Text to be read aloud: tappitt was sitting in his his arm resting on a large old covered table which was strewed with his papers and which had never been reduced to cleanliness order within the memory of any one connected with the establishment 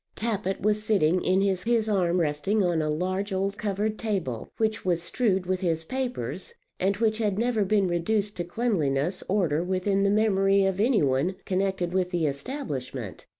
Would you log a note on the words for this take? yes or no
no